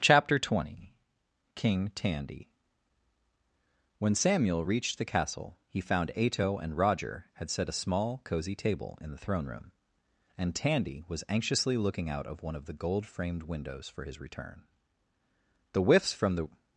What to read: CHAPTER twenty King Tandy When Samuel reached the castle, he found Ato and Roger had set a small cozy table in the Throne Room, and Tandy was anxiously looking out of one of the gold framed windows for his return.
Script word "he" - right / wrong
right